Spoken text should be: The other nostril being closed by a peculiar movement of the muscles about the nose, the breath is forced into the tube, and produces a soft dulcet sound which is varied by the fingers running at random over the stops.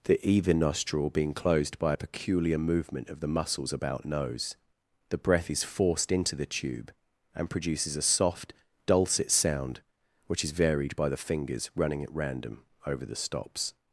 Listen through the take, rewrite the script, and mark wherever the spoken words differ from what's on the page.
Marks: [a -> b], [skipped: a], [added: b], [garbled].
The [other -> either] nostril being closed by a peculiar movement of the muscles about [skipped: the] nose, the breath is forced into the tube, and produces a soft dulcet sound which is varied by the fingers running at random over the stops.